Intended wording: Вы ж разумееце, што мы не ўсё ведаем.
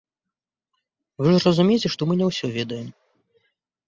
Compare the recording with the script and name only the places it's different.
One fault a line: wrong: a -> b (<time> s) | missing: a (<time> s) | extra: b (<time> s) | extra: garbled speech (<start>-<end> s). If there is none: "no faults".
no faults